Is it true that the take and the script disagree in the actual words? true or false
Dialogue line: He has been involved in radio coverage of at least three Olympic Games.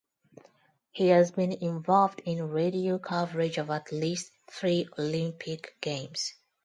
false